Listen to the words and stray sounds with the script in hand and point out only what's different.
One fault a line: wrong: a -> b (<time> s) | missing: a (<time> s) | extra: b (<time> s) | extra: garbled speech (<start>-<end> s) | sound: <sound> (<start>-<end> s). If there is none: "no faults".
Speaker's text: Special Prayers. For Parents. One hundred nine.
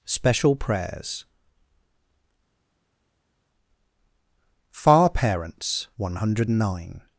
wrong: For -> Far (4.7 s)